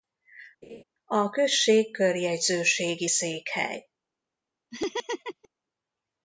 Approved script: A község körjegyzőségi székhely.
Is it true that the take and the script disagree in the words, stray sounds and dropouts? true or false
true